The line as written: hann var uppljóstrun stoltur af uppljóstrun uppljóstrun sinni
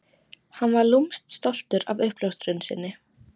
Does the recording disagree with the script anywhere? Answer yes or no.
yes